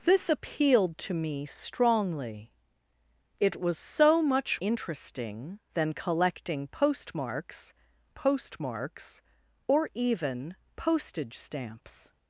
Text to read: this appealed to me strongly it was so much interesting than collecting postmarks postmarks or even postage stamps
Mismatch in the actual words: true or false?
false